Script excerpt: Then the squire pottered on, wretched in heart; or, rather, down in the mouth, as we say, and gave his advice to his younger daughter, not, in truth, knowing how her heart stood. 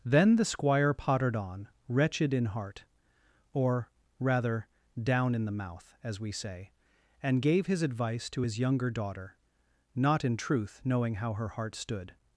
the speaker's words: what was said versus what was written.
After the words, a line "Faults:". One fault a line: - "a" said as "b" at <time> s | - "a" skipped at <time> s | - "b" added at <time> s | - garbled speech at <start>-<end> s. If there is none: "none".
Then the squire pottered on, wretched in heart; or, rather, down in the mouth, as we say, and gave his advice to his younger daughter, not, in truth, knowing how her heart stood.
Faults:
none